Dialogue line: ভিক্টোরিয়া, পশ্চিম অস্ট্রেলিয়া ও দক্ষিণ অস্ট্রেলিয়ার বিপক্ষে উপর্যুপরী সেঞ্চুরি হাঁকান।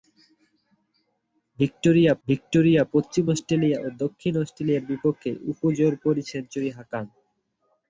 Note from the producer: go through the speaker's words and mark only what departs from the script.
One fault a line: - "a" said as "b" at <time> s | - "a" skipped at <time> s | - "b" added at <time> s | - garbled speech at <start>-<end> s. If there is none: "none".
- "ভিক্টোরিয়া" added at 2.3 s